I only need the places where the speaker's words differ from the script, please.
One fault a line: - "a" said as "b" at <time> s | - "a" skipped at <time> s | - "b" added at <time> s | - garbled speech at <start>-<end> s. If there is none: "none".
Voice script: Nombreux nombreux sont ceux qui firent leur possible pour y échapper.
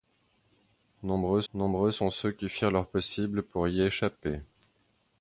none